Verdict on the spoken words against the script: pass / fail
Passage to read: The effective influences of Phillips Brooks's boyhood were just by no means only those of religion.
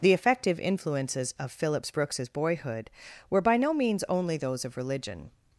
fail